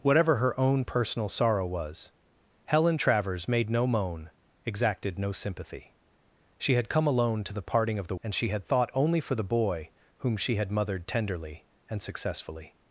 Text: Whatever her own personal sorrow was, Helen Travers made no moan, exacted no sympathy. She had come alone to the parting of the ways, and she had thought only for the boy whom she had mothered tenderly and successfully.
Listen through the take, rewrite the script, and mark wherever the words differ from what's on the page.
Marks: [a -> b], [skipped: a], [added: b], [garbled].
Whatever her own personal sorrow was, Helen Travers made no moan, exacted no sympathy. She had come alone to the parting of the [skipped: ways,] and she had thought only for the boy whom she had mothered tenderly and successfully.